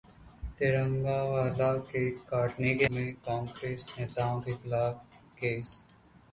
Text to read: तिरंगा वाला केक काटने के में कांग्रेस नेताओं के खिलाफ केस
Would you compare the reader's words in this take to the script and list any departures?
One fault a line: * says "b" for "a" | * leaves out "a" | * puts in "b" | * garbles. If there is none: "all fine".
all fine